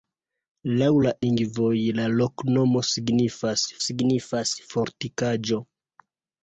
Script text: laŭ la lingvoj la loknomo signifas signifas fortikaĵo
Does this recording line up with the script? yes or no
yes